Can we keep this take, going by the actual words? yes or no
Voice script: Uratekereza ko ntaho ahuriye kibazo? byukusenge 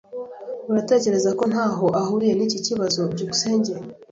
no